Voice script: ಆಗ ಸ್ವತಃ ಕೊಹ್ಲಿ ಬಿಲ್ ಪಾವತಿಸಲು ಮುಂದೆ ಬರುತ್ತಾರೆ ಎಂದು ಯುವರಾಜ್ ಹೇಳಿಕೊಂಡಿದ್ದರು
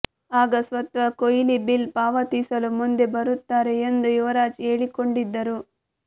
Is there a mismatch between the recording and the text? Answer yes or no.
no